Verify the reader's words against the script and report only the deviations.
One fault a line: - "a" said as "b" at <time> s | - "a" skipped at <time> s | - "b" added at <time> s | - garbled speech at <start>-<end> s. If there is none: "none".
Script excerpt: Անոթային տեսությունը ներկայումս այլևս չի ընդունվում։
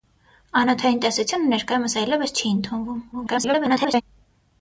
- garbled speech at 3.1-4.0 s